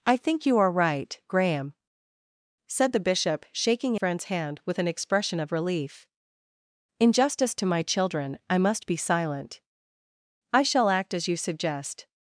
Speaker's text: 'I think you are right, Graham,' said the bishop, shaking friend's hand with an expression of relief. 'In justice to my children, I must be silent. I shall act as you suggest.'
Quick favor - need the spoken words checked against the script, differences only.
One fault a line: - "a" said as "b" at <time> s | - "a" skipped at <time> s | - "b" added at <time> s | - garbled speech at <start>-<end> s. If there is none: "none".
none